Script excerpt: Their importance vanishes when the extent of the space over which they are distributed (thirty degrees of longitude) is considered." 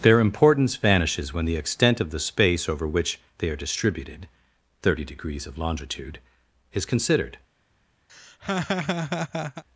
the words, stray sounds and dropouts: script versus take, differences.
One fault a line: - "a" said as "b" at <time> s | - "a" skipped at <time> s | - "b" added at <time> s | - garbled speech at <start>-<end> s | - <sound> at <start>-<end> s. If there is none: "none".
- laugh at 8.1-9.6 s